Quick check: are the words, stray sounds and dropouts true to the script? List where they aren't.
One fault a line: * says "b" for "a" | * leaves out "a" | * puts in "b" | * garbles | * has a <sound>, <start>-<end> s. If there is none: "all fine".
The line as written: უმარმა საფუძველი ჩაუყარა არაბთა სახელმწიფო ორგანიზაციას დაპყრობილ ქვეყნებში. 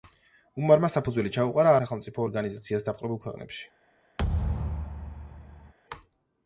* leaves out "არაბთა"
* has a thud, 4.2-5.7 s